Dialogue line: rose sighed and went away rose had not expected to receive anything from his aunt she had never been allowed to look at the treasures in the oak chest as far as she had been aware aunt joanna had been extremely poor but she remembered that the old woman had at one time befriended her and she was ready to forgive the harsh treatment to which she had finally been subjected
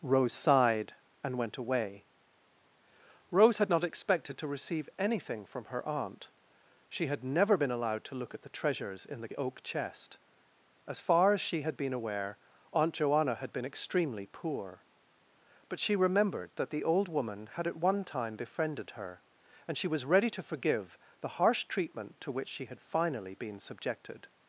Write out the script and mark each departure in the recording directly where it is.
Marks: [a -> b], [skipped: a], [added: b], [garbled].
rose sighed and went away rose had not expected to receive anything from [his -> her] aunt she had never been allowed to look at the treasures in the oak chest as far as she had been aware aunt joanna had been extremely poor but she remembered that the old woman had at one time befriended her and she was ready to forgive the harsh treatment to which she had finally been subjected